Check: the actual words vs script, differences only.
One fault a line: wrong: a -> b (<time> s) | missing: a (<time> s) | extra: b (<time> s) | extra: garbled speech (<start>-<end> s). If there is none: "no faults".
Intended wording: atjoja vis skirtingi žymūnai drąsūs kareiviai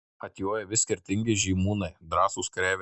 no faults